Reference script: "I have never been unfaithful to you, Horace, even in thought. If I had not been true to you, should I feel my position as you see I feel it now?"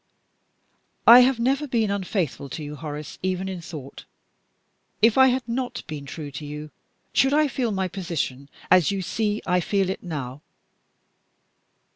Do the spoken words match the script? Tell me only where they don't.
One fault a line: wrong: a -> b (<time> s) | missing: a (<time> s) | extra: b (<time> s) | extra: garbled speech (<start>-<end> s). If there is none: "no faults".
no faults